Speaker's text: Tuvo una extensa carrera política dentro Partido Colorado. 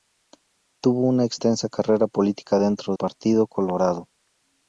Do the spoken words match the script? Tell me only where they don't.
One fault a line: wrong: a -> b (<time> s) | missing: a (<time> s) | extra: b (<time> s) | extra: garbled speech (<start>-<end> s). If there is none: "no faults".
no faults